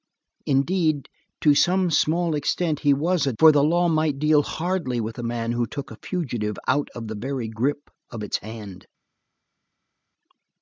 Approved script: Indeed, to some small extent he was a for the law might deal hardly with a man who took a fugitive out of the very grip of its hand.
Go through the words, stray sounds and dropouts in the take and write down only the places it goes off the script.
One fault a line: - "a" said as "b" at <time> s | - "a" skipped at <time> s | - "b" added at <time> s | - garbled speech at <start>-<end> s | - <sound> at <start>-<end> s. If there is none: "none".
none